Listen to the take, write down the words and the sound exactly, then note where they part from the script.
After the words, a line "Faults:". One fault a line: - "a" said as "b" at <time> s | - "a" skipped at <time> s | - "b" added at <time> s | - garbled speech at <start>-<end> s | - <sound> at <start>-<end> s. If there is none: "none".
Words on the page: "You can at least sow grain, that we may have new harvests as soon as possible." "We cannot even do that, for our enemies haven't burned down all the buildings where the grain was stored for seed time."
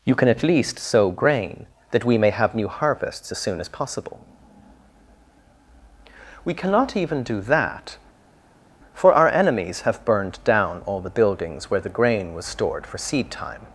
"You can at least sow grain, that we may have new harvests as soon as possible." "We cannot even do that, for our enemies have burned down all the buildings where the grain was stored for seed time."
Faults:
- "haven't" said as "have" at 9.8 s